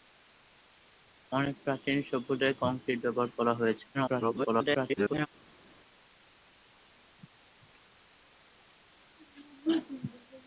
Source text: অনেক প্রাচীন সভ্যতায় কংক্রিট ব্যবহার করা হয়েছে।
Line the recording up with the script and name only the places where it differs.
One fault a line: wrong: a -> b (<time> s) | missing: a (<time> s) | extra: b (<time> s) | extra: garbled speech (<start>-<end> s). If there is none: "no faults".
extra: garbled speech (3.9-5.3 s)